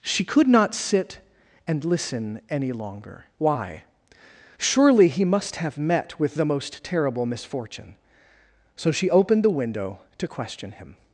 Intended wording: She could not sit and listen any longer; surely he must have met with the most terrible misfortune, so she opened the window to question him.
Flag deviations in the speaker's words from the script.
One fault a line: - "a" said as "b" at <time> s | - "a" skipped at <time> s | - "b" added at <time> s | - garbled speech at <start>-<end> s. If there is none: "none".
- "why" added at 3.4 s